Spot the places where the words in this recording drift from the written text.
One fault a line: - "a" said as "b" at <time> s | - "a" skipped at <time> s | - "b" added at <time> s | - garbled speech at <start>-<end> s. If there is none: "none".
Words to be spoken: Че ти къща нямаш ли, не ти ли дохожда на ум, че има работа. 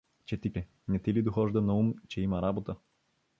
- "къща нямаш" skipped at 0.5 s